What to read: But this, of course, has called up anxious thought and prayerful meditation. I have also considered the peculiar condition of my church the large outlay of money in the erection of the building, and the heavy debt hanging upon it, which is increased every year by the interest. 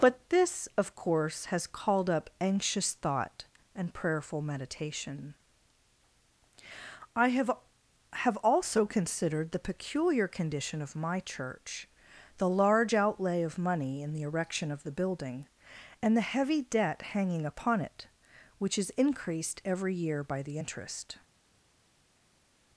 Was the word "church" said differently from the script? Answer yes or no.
no